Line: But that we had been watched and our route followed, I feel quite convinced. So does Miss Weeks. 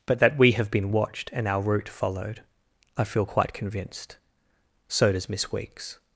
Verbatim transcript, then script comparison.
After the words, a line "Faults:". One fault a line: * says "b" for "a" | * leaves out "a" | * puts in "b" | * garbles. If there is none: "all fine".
But that we have been watched and our route followed, I feel quite convinced. So does Miss Weeks.
Faults:
* says "have" for "had"